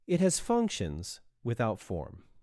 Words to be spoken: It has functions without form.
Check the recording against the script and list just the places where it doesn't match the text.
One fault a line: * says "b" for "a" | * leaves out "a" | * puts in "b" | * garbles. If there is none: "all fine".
all fine